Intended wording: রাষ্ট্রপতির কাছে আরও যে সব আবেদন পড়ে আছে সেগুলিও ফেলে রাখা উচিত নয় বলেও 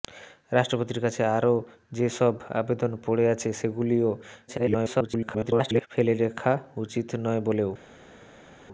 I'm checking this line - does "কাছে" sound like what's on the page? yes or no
yes